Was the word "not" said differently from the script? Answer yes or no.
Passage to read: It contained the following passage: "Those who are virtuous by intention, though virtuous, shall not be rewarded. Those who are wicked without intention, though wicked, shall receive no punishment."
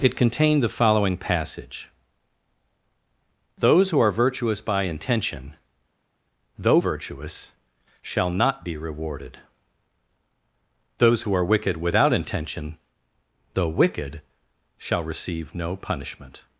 no